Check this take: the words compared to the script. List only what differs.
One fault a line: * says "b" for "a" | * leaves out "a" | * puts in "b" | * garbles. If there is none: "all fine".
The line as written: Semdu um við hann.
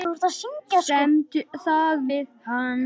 * puts in "það"